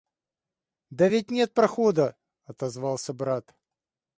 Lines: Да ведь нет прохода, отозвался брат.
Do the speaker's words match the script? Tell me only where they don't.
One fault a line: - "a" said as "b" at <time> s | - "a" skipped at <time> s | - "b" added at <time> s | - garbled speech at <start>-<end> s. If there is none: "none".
none